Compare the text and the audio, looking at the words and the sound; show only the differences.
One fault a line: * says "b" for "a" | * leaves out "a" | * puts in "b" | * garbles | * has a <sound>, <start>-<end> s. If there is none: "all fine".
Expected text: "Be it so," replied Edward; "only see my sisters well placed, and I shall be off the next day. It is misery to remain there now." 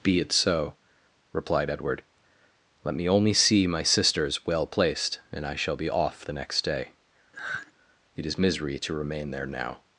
* puts in "let me"
* has a sigh, 7.3-7.7 s